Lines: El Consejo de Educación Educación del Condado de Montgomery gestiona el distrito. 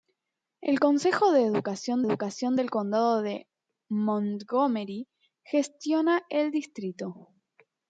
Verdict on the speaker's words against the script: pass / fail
pass